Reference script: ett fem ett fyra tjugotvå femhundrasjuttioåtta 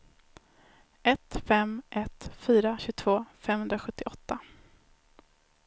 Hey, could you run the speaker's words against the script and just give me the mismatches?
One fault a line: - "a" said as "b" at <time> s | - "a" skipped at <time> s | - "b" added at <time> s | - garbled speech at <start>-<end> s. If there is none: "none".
none